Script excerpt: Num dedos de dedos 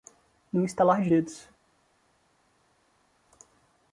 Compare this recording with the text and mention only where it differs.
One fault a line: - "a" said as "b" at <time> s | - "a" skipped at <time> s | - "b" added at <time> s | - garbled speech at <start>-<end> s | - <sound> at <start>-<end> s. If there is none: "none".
- "dedos" said as "estalar" at 0.7 s